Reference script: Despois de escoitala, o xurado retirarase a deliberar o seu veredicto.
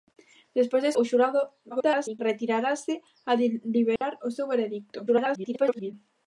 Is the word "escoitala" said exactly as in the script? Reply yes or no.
no